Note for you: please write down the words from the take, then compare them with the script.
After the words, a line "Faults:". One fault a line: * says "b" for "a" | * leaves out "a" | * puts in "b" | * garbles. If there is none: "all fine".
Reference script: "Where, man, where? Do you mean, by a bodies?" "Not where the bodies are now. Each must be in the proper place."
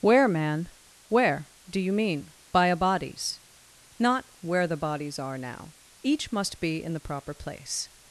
"Where, man, where? Do you mean, by a bodies?" "Not where the bodies are now. Each must be in the proper place."
Faults:
all fine